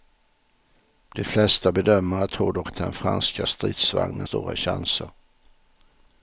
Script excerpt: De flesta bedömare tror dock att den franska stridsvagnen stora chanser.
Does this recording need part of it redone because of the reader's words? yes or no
no